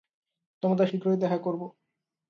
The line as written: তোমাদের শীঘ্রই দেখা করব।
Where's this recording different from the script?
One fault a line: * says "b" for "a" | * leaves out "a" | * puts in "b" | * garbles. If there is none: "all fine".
all fine